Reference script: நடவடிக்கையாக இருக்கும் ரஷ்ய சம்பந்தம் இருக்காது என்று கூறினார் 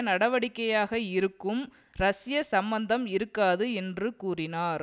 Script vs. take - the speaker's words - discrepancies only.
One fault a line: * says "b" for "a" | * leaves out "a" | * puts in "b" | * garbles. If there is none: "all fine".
all fine